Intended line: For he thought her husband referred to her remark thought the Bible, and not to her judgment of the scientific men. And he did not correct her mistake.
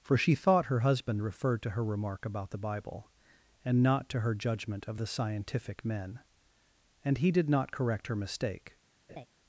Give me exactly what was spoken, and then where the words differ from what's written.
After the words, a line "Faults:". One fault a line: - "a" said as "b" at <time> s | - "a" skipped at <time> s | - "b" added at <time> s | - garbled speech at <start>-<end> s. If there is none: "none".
For she thought her husband referred to her remark about the Bible, and not to her judgment of the scientific men. And he did not correct her mistake.
Faults:
- "he" said as "she" at 0.2 s
- "thought" said as "about" at 2.2 s